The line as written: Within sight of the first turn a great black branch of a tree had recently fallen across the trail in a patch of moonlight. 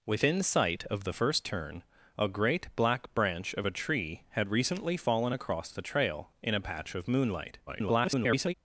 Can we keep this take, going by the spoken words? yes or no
no